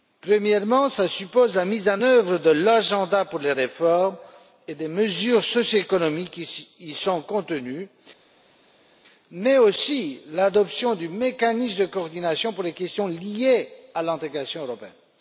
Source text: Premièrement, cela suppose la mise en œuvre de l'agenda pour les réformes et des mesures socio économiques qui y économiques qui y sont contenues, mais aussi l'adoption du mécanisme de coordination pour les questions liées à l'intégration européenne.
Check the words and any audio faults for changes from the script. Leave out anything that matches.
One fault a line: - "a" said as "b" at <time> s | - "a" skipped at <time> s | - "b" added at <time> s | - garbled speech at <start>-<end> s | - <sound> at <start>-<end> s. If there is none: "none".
- "économiques qui y" skipped at 6.9 s